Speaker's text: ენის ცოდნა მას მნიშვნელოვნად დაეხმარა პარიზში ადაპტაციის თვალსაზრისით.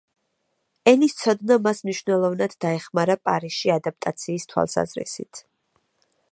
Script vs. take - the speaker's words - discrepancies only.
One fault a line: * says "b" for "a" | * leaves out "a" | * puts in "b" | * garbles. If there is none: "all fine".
all fine